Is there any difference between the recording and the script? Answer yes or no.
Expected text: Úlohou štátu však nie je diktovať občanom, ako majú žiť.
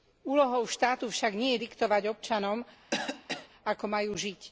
no